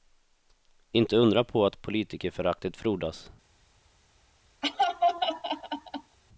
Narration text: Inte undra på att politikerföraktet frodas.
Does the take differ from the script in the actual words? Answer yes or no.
no